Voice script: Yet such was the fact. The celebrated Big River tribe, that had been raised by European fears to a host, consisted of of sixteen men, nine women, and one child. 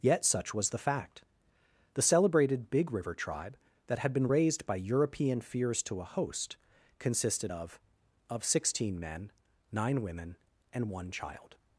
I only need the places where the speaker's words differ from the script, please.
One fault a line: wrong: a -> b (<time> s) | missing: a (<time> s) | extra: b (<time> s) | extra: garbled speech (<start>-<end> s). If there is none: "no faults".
no faults